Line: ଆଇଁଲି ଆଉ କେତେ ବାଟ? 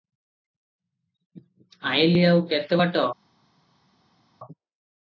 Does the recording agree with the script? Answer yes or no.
yes